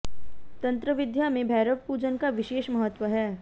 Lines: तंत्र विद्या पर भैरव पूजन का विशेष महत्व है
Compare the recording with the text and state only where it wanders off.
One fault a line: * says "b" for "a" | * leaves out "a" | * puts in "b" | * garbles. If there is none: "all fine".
* says "में" for "पर"